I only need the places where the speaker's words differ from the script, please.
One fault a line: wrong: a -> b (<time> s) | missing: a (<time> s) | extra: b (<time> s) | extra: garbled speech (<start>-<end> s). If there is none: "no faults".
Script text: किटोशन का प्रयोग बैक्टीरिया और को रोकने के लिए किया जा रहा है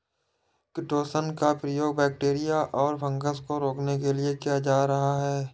extra: फँगस (3.0 s)